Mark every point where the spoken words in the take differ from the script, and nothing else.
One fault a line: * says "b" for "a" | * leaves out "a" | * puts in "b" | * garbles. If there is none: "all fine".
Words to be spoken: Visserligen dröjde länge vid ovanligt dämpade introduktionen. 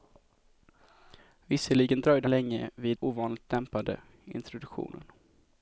all fine